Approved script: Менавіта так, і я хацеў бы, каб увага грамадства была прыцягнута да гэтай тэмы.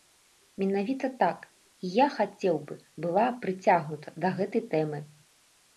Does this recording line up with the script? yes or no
no